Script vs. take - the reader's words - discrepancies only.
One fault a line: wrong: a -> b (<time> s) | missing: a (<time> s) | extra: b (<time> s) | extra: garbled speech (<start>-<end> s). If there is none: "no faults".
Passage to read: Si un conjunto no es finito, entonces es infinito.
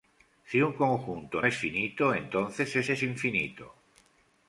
missing: no (1.4 s)
extra: es (2.9 s)